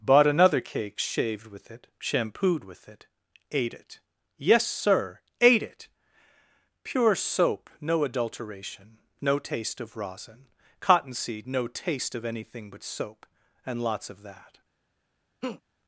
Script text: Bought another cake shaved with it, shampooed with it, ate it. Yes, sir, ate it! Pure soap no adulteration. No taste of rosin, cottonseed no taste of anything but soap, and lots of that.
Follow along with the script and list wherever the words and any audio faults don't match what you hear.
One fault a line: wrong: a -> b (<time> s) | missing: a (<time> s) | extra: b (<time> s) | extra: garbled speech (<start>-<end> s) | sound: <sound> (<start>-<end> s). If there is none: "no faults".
sound: laugh (15.4-15.6 s)